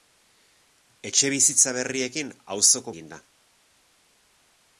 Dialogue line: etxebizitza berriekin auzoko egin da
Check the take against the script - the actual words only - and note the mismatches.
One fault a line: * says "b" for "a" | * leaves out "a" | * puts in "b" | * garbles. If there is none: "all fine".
all fine